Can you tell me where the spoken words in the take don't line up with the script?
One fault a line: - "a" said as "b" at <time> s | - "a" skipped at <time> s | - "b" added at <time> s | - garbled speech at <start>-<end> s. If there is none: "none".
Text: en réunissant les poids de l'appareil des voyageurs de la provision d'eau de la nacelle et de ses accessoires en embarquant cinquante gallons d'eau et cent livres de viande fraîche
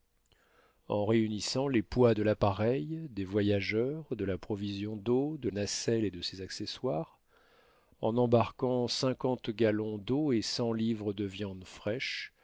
- "la" skipped at 5.5 s